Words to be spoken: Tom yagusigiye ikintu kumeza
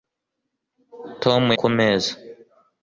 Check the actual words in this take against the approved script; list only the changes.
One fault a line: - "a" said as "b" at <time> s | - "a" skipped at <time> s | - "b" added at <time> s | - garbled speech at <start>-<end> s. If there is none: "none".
- "yagusigiye ikintu" skipped at 1.4 s